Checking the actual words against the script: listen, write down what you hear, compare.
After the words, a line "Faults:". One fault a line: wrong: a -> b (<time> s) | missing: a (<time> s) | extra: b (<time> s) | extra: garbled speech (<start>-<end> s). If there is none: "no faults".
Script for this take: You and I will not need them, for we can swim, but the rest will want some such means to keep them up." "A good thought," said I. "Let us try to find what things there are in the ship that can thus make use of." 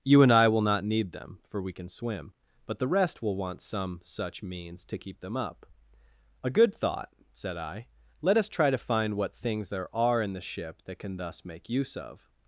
You and I will not need them, for we can swim, but the rest will want some such means to keep them up." "A good thought," said I. "Let us try to find what things there are in the ship that can thus make use of."
Faults:
no faults